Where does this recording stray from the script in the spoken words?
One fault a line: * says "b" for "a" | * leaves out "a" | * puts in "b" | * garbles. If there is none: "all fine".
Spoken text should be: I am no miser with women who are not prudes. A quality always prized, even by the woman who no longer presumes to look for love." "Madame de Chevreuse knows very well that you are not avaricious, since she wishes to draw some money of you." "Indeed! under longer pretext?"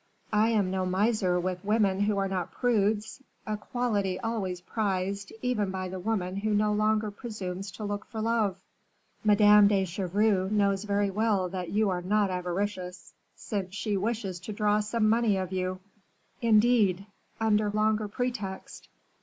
all fine